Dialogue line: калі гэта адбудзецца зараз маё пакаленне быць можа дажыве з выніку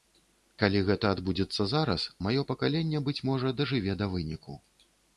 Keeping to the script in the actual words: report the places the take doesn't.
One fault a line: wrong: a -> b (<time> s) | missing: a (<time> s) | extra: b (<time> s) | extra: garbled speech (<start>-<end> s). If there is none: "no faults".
wrong: з -> да (4.0 s)